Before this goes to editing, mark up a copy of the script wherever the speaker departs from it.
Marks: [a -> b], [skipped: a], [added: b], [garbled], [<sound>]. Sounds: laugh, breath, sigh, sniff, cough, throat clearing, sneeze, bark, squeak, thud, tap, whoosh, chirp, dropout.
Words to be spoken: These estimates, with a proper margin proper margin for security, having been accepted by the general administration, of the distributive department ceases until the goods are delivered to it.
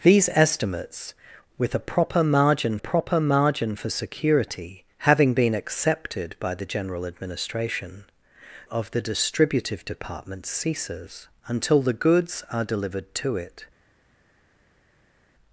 These estimates, with a proper margin proper margin for security, having been accepted by the general administration, of the distributive department ceases until the goods are delivered to it.